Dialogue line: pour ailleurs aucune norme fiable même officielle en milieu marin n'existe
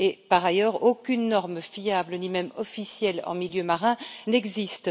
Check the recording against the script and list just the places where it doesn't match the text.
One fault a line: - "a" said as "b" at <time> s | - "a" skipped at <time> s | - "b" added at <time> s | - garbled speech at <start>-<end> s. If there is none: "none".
- "pour" said as "par" at 0.3 s
- "ni" added at 2.2 s